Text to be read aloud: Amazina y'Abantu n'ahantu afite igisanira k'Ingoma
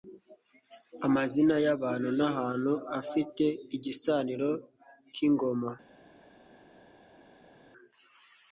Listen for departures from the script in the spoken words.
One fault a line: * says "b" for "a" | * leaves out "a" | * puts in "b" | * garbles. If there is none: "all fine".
all fine